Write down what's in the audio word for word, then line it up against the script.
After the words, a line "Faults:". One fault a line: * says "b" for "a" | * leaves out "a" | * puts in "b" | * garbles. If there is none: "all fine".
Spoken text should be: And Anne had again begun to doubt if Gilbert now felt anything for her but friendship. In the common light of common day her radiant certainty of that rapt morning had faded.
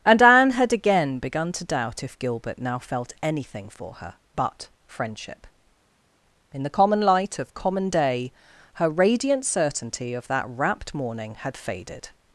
And Anne had again begun to doubt if Gilbert now felt anything for her but friendship. In the common light of common day her radiant certainty of that rapt morning had faded.
Faults:
all fine